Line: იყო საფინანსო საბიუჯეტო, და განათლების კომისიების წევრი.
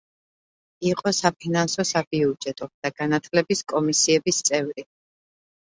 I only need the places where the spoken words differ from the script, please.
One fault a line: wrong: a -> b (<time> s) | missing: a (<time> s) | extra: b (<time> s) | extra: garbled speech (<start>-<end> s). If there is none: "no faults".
no faults